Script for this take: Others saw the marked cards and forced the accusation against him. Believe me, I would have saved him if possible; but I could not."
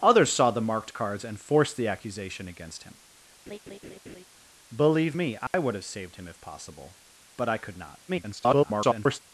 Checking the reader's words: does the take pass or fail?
fail